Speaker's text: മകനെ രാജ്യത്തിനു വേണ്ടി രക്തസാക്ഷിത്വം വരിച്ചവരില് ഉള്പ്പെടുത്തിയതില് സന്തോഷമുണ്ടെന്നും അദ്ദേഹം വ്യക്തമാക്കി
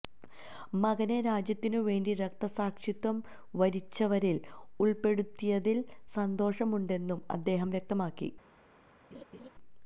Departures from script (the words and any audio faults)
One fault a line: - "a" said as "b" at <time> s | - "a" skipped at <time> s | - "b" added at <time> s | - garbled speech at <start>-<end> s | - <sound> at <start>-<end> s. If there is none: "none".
- laugh at 9.1-9.5 s